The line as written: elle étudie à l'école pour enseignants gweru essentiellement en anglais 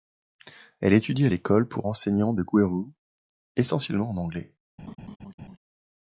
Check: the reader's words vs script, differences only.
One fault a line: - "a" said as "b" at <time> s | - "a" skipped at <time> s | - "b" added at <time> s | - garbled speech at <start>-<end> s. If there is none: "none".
- "de" added at 2.3 s